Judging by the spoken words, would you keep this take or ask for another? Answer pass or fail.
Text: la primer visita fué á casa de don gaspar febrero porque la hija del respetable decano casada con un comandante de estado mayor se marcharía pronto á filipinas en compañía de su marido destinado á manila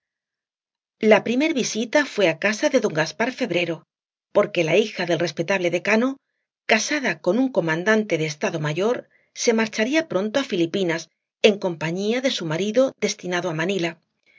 pass